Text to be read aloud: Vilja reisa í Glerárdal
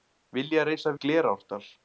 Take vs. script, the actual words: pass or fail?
pass